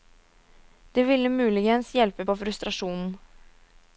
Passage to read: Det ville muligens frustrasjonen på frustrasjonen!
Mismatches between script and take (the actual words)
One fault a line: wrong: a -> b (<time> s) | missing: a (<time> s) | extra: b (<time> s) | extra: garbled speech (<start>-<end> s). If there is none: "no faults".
wrong: frustrasjonen -> hjelpe (1.9 s)